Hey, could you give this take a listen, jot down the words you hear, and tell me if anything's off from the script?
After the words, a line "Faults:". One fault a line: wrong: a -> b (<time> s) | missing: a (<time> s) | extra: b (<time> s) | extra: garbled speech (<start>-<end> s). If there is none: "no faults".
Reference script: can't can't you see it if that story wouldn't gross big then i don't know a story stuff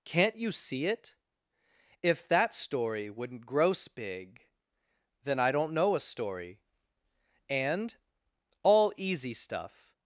can't you see it if that story wouldn't gross big then i don't know a story and all easy stuff
Faults:
missing: can't (0.3 s)
extra: and all easy (7.5 s)